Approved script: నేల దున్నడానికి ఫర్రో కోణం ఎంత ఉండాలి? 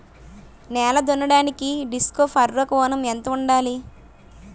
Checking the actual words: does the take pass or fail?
fail